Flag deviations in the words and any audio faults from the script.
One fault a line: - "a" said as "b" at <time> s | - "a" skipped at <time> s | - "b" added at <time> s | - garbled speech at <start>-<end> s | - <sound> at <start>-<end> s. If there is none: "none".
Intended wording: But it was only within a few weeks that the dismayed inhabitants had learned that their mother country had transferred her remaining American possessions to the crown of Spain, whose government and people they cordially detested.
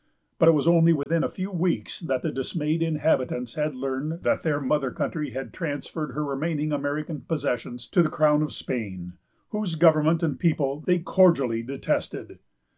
- dropout at 1.0-1.1 s